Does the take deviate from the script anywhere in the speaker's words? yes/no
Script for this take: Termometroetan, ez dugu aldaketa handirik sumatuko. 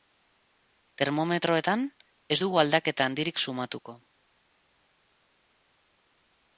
no